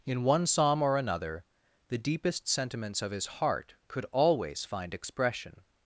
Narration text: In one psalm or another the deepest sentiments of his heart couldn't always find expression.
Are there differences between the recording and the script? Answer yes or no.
yes